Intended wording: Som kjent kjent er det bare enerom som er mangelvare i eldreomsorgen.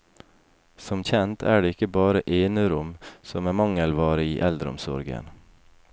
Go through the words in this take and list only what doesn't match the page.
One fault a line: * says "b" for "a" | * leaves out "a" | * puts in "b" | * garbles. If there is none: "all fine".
* leaves out "kjent"
* puts in "ikke"